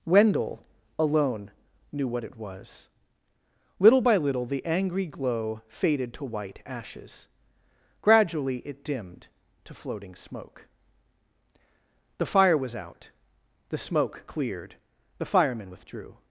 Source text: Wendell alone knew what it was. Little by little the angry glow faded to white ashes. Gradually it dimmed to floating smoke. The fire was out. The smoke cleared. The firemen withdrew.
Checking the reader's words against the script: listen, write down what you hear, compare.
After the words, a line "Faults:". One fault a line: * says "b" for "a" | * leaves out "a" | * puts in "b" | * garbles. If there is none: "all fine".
Wendell alone knew what it was. Little by little the angry glow faded to white ashes. Gradually it dimmed to floating smoke. The fire was out. The smoke cleared. The firemen withdrew.
Faults:
all fine